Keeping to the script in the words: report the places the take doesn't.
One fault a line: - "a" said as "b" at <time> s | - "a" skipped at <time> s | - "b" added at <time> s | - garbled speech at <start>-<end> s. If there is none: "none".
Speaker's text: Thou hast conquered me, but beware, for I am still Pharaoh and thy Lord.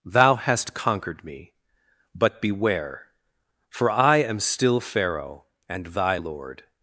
none